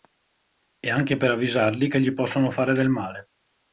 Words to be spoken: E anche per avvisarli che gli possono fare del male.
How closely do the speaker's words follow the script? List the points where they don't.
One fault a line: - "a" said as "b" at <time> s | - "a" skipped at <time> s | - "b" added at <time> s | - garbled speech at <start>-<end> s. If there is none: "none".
none